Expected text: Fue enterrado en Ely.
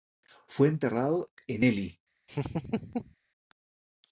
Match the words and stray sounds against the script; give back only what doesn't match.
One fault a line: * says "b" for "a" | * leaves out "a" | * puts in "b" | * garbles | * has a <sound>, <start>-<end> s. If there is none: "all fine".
* has a laugh, 2.3-3.1 s